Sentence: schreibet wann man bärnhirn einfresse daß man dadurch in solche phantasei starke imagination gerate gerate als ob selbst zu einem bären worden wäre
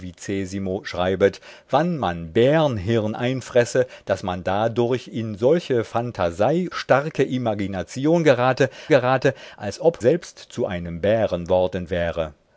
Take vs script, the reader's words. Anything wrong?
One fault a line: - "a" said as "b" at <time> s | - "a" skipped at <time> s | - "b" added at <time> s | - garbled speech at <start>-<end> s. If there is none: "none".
none